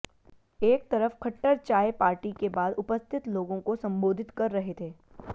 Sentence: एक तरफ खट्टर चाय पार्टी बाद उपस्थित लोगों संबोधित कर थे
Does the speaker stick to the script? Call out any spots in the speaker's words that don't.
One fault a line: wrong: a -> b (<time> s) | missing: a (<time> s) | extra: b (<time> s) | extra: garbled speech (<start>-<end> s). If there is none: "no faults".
extra: के (2.4 s)
extra: को (3.6 s)
extra: रहे (4.5 s)